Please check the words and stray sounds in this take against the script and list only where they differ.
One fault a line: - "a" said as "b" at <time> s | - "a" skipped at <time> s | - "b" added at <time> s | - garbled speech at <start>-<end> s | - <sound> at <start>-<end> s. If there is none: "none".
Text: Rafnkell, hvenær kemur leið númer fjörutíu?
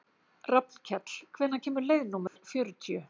- dropout at 2.3-2.4 s